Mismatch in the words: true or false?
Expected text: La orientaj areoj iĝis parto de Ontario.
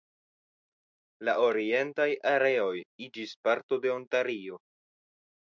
false